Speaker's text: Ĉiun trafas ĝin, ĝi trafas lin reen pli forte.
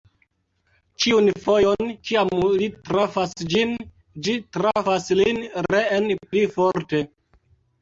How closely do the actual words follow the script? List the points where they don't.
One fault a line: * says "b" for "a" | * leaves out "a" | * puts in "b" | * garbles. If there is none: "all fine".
* puts in "fojon kiam li"